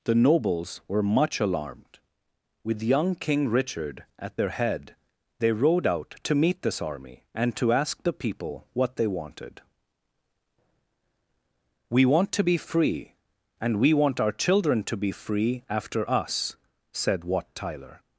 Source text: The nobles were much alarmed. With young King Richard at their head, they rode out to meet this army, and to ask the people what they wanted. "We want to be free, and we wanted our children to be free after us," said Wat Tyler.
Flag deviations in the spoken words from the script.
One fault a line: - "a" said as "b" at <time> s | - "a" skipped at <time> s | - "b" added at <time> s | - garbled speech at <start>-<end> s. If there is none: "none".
- "wanted" said as "want" at 13.9 s